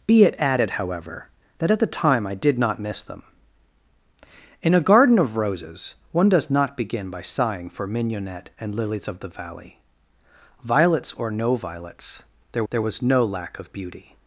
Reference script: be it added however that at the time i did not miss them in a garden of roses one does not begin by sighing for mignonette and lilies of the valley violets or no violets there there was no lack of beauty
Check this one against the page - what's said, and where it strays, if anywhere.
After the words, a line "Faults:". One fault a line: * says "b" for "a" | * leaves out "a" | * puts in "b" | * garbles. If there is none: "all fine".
be it added however that at the time i did not miss them in a garden of roses one does not begin by sighing for mignonette and lilies of the valley violets or no violets there there was no lack of beauty
Faults:
all fine